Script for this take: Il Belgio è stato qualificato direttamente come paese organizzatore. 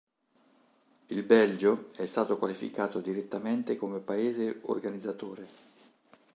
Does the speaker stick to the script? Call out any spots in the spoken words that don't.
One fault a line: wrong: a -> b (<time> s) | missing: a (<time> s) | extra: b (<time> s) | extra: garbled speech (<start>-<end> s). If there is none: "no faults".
no faults